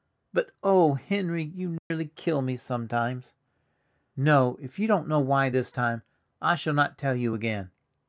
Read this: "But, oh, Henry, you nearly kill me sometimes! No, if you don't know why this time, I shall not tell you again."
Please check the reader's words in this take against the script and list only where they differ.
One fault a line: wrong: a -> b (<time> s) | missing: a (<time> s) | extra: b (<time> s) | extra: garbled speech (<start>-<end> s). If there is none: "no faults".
no faults